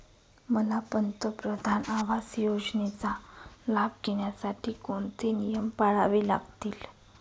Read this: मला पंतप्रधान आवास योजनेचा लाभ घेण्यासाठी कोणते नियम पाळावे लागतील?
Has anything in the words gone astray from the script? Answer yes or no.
no